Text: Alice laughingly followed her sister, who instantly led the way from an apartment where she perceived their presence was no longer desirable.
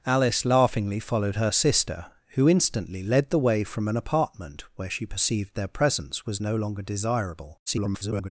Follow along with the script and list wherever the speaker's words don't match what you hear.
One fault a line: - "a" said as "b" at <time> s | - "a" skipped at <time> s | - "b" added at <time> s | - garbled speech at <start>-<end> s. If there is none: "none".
- garbled speech at 7.7-8.3 s